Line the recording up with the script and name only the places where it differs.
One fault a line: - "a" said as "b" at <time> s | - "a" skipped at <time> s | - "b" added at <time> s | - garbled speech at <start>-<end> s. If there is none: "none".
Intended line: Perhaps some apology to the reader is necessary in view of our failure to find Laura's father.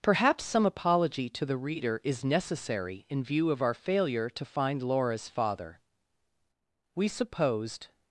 - "We supposed" added at 7.0 s